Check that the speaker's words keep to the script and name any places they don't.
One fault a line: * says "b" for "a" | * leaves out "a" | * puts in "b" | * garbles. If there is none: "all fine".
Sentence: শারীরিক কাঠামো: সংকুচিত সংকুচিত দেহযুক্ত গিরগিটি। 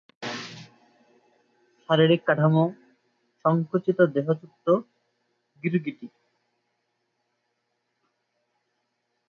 * leaves out "সংকুচিত"